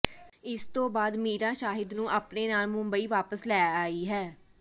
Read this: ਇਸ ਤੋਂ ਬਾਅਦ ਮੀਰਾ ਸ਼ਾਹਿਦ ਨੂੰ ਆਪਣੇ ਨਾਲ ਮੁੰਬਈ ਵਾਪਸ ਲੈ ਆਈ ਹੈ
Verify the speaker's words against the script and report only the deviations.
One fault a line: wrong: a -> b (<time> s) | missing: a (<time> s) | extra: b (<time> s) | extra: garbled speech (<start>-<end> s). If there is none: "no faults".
no faults